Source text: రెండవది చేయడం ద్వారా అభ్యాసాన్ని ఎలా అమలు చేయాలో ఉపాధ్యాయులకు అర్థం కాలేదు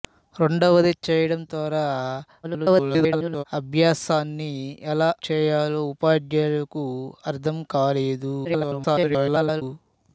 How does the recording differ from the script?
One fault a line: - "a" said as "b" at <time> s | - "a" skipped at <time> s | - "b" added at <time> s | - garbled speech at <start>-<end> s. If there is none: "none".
- garbled speech at 2.4-3.4 s
- "అమలు" skipped at 5.1 s
- garbled speech at 8.4-9.6 s